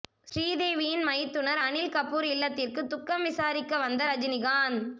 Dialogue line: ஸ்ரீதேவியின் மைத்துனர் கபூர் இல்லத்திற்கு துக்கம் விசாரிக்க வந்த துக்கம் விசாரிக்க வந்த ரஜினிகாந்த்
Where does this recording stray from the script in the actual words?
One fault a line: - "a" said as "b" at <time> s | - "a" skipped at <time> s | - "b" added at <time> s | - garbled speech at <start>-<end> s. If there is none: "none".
- "அனில்" added at 1.6 s
- "துக்கம் விசாரிக்க வந்த" skipped at 4.0 s